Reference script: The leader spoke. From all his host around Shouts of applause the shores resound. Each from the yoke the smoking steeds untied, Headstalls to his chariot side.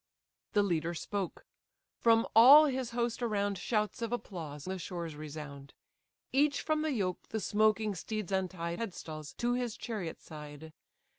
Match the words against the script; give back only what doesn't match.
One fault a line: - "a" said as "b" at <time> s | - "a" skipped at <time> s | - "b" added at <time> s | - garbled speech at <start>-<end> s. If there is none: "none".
none